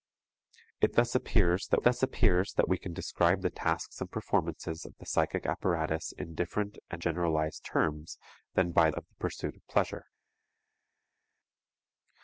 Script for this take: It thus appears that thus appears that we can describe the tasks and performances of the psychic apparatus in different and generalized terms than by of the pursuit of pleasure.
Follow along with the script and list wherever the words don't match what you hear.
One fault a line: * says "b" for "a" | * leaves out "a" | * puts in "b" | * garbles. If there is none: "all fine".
all fine